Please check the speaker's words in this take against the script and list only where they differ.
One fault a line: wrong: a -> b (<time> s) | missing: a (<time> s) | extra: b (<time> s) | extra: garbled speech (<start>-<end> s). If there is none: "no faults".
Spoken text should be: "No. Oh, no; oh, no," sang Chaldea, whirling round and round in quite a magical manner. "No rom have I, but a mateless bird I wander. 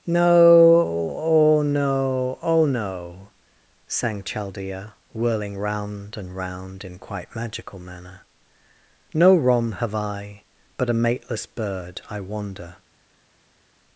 missing: a (7.3 s)